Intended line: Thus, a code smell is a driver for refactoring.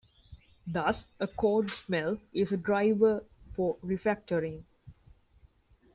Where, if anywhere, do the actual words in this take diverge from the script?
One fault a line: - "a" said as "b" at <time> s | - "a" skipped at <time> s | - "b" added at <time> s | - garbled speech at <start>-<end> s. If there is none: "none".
none